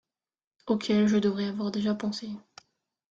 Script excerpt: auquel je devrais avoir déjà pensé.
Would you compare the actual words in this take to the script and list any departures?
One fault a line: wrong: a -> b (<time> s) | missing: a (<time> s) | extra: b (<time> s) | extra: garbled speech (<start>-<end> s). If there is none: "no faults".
no faults